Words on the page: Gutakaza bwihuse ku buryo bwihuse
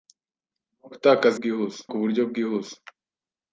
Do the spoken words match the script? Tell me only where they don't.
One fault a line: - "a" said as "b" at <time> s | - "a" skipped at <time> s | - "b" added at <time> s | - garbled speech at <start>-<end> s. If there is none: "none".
none